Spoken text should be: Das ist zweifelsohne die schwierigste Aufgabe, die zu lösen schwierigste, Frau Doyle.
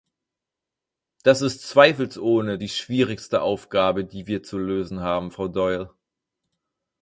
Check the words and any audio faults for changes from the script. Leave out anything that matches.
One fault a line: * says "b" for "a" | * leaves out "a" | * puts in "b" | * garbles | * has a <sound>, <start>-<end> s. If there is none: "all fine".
* puts in "wir"
* says "haben" for "schwierigste"